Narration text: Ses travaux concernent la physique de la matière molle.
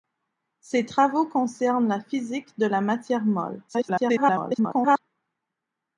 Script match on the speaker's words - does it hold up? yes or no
no